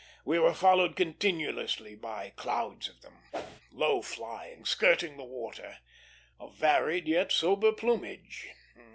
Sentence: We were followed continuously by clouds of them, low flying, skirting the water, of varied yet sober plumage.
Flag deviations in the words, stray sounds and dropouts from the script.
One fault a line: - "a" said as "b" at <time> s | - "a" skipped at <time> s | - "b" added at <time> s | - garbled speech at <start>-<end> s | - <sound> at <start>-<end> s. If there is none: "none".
- whoosh at 3.3-3.6 s